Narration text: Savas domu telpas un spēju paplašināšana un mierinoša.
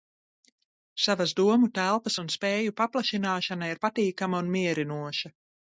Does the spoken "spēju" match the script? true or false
true